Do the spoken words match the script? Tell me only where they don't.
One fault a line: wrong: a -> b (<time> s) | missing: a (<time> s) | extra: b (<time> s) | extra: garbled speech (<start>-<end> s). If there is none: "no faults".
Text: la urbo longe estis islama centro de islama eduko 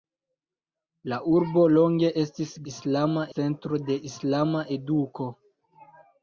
no faults